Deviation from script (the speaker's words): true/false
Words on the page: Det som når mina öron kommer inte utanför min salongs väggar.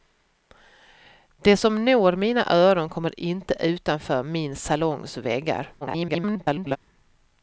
true